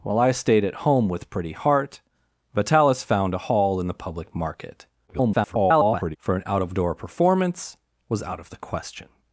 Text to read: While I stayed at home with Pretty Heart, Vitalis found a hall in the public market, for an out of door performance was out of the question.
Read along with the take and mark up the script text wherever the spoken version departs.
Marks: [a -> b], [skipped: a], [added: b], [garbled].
While I stayed at home with Pretty Heart, Vitalis found a hall in the public market, [garbled] for an out of door performance was out of the question.